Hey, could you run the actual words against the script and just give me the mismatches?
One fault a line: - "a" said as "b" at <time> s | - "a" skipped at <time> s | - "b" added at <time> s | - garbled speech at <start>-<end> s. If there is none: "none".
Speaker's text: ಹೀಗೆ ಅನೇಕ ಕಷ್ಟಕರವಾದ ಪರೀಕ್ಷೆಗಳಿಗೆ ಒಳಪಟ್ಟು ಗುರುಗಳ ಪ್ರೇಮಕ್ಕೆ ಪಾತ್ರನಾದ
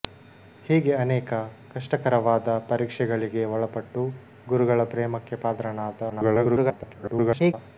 - garbled speech at 6.1-7.5 s